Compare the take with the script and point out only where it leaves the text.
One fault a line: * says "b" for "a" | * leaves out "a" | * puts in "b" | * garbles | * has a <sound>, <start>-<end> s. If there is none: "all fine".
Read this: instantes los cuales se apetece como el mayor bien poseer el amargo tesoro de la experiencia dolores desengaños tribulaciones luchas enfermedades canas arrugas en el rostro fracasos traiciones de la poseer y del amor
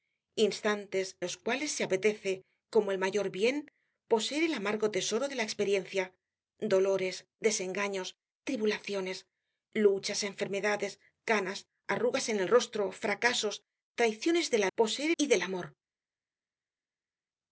all fine